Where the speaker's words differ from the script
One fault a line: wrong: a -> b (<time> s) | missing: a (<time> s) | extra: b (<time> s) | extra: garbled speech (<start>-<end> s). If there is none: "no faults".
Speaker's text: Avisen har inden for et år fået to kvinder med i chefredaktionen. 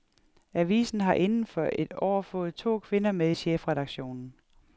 no faults